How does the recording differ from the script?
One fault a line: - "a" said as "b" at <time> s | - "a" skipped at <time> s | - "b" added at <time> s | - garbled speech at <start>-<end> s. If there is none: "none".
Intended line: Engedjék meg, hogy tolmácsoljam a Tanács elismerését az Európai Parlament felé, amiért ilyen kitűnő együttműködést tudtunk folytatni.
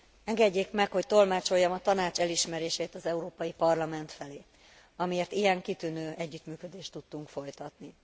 none